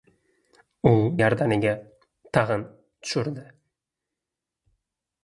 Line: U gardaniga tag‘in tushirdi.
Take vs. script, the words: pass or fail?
pass